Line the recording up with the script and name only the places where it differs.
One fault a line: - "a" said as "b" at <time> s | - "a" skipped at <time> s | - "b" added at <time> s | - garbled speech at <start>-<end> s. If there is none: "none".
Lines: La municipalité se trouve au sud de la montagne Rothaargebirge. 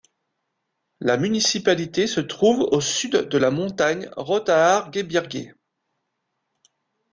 none